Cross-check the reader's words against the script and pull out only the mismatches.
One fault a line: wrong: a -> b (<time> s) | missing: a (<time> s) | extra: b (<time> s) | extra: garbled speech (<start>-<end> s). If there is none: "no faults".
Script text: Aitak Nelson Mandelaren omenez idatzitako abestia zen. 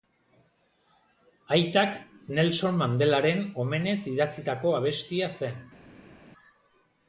no faults